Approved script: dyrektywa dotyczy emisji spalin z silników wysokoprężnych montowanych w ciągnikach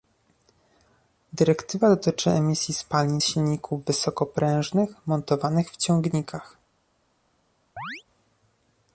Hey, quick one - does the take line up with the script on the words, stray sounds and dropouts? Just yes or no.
no